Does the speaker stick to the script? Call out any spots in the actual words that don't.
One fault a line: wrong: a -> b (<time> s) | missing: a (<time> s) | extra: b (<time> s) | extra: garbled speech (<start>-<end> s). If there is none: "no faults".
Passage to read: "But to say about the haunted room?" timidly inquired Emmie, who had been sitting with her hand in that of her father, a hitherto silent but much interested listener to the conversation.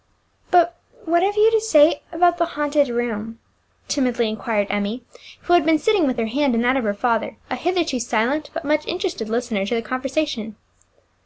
extra: what have you (1.1 s)